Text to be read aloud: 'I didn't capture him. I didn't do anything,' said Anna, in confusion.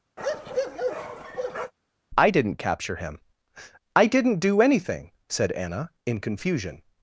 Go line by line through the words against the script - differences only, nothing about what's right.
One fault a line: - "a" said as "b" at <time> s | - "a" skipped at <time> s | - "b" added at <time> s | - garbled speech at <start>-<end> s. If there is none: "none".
none